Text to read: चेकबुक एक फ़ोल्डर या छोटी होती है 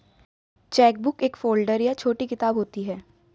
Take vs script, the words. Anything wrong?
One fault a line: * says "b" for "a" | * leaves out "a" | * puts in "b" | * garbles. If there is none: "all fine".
* puts in "किताब"